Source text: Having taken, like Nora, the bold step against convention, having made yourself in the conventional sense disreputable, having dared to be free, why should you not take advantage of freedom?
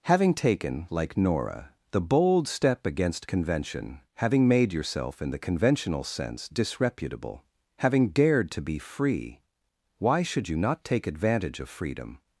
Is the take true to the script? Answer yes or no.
yes